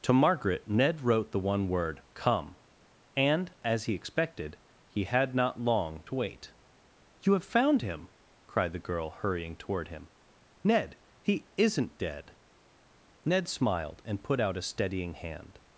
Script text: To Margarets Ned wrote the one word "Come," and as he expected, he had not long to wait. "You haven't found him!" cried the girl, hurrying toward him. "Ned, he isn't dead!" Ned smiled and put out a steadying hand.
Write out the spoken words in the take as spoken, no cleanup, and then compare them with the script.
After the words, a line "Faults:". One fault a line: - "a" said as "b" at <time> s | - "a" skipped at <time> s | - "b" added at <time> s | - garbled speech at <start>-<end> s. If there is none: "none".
To Margaret Ned wrote the one word "Come," and as he expected, he had not long to wait. "You have found him!" cried the girl, hurrying toward him. "Ned, he isn't dead!" Ned smiled and put out a steadying hand.
Faults:
- "Margarets" said as "Margaret" at 0.1 s
- "haven't" said as "have" at 7.3 s